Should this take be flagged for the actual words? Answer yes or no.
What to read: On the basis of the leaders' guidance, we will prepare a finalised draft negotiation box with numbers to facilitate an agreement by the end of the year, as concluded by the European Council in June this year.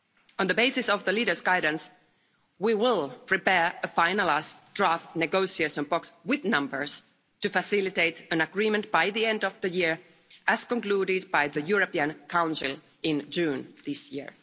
no